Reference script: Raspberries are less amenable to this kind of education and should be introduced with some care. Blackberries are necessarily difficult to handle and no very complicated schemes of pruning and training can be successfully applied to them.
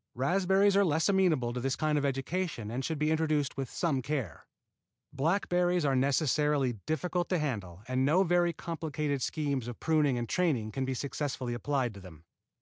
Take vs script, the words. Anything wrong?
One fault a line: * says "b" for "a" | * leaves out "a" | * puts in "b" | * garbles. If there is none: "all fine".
all fine